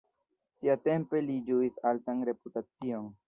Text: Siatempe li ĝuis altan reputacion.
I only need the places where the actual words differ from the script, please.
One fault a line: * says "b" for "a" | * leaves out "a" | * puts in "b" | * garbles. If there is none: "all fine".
all fine